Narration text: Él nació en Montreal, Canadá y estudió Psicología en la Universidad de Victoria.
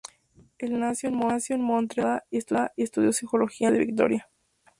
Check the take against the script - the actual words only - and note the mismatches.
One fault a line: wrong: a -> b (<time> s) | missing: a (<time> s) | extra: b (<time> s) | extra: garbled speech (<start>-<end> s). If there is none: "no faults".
no faults